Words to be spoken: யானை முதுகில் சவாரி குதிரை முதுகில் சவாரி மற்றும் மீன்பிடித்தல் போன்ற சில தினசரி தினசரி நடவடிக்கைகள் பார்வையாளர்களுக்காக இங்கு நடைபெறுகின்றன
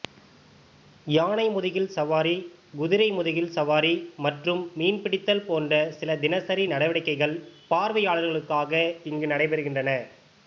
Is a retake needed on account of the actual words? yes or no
yes